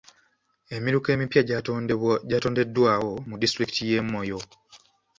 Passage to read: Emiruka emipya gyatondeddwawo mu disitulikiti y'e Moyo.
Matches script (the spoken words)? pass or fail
pass